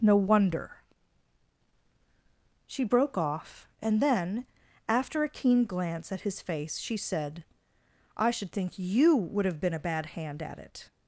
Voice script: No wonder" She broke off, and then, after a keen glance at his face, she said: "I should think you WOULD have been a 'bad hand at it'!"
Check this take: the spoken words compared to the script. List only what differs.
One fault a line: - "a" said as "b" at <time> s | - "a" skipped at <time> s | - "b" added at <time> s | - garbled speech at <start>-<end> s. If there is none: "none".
none